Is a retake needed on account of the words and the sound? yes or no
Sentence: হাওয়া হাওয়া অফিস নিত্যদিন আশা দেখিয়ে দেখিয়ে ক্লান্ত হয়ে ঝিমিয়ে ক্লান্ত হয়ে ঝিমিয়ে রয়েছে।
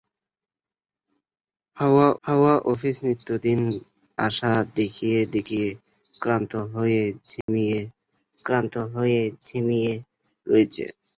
yes